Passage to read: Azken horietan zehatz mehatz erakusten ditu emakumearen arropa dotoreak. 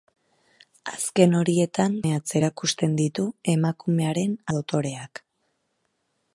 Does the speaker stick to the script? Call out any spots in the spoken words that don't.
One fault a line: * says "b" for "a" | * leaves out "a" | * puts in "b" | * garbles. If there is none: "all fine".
* leaves out "zehatz"
* leaves out "arropa"